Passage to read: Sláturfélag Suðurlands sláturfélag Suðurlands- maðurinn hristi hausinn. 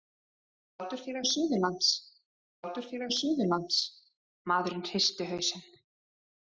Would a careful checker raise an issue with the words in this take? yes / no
no